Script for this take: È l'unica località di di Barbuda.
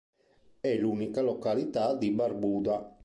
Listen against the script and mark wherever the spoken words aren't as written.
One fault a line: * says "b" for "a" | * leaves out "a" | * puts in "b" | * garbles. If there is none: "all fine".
* leaves out "di"